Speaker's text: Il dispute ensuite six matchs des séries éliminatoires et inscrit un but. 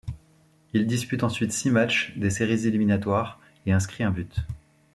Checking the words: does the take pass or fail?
pass